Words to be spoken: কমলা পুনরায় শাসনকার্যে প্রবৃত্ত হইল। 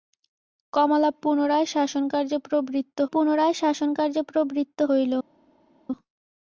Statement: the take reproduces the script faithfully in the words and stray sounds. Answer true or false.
false